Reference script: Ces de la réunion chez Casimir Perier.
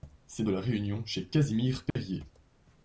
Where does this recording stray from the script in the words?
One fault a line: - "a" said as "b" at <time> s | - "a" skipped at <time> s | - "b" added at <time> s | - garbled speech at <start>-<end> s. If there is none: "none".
none